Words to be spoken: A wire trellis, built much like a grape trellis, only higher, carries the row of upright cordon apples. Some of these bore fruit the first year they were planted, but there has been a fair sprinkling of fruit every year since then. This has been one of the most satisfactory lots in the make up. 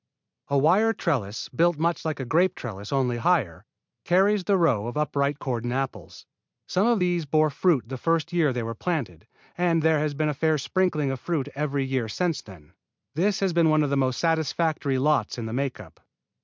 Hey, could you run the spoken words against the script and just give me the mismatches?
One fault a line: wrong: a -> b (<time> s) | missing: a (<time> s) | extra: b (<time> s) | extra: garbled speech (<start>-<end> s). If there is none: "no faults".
wrong: but -> and (9.6 s)